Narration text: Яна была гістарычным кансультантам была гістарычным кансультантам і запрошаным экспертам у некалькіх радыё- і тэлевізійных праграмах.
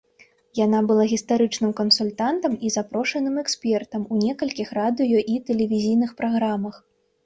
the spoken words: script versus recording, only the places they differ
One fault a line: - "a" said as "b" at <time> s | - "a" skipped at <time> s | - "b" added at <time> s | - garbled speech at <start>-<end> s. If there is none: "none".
- "была гістарычным кансультантам" skipped at 2.6 s